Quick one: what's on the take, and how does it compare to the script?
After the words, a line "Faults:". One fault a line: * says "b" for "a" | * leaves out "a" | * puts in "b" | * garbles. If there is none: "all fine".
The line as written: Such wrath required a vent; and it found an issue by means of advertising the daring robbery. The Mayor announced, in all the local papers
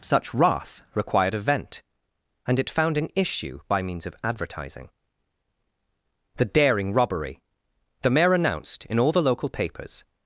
Such wrath required a vent; and it found an issue by means of advertising the daring robbery. The Mayor announced, in all the local papers
Faults:
all fine